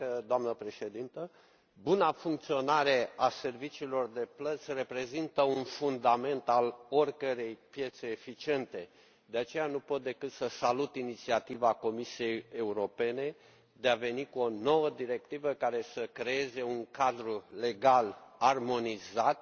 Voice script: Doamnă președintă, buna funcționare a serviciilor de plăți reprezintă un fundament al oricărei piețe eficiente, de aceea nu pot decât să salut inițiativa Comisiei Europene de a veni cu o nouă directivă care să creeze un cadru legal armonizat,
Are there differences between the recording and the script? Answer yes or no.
no